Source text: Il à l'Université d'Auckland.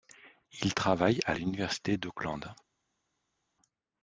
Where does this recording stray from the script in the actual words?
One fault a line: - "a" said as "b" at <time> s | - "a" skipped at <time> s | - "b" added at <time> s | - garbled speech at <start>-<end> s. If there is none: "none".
- "travaille" added at 0.7 s